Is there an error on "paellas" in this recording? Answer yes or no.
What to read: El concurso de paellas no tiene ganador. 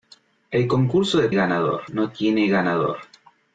yes